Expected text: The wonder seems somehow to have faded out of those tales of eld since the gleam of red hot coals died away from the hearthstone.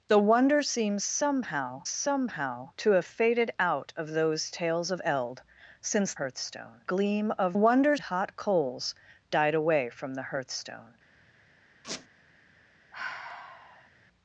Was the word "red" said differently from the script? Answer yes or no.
yes